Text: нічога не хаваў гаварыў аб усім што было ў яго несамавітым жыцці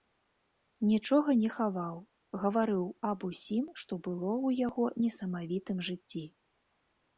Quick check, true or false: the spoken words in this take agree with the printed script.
true